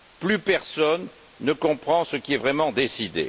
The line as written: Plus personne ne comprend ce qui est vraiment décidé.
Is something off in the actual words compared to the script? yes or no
no